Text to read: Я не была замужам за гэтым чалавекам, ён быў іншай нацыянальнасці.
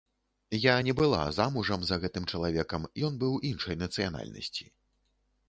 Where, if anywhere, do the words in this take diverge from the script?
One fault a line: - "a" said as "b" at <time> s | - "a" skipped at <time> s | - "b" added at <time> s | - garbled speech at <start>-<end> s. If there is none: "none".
none